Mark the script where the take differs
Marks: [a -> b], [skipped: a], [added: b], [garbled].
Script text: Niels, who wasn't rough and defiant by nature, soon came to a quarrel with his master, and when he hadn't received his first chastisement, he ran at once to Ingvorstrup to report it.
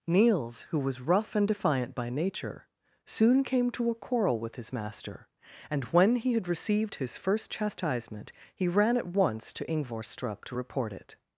Niels, who [wasn't -> was] rough and defiant by nature, soon came to a quarrel with his master, and when he [hadn't -> had] received his first chastisement, he ran at once to Ingvorstrup to report it.